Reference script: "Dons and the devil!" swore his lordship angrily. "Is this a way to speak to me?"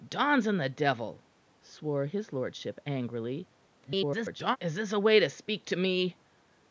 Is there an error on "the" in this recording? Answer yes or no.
no